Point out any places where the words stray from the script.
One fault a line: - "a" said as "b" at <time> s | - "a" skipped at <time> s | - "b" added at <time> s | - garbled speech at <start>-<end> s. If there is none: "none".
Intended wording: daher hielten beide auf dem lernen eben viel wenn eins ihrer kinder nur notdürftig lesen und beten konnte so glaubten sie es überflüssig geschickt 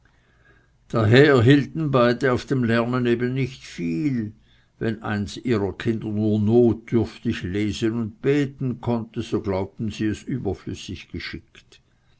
- "nicht" added at 3.4 s